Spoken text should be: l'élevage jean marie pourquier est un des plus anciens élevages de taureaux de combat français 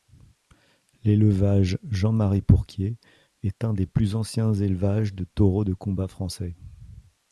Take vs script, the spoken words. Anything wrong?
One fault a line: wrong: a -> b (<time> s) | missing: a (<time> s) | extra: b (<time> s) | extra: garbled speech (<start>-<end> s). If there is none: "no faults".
no faults